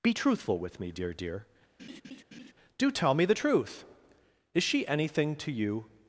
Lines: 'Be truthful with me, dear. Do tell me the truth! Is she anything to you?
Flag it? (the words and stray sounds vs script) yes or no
yes